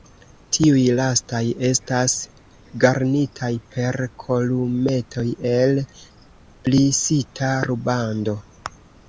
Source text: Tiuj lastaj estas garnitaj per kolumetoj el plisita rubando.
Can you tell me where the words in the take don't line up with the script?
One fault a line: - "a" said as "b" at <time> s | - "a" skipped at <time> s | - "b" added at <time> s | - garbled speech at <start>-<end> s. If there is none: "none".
none